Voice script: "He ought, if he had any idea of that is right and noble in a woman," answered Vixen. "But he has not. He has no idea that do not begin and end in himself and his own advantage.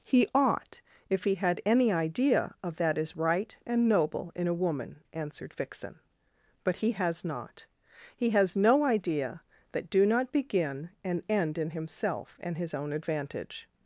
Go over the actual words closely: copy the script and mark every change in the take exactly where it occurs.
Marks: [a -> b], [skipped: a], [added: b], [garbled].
"He ought, if he had any idea of that is right and noble in a woman," answered Vixen. "But he has not. He has no idea that do not begin and end in himself and his own advantage.